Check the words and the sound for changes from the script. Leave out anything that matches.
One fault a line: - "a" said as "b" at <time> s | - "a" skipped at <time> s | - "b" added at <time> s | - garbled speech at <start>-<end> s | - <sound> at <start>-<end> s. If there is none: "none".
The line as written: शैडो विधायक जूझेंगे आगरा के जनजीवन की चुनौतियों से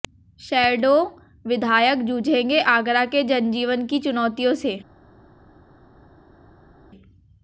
none